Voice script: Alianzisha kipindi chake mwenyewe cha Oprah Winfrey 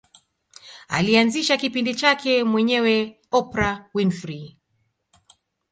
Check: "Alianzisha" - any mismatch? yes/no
no